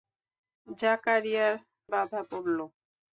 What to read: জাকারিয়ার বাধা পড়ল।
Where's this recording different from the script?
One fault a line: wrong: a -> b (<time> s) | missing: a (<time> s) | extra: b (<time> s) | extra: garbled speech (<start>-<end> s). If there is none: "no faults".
no faults